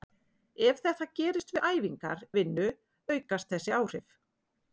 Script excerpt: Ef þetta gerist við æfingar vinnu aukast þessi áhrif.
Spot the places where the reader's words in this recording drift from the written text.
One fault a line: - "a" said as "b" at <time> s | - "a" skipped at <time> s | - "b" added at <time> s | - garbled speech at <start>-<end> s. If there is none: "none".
none